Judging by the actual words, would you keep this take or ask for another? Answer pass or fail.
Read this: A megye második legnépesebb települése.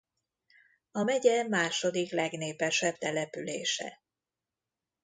pass